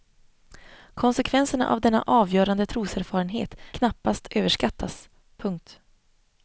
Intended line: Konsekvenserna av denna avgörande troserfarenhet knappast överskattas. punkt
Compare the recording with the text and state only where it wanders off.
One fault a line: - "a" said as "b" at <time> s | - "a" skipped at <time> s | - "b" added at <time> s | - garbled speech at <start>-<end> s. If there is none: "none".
none